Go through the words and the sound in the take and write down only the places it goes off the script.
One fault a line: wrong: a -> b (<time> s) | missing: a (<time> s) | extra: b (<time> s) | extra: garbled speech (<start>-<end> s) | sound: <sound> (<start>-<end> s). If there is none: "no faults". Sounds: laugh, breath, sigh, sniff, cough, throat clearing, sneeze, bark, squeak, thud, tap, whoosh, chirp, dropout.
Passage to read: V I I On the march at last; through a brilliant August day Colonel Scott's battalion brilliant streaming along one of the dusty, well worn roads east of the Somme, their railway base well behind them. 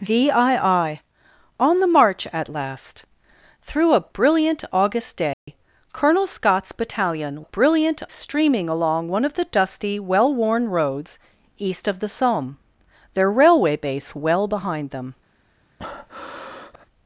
sound: dropout (5.3-5.5 s)
sound: breath (15.8-16.9 s)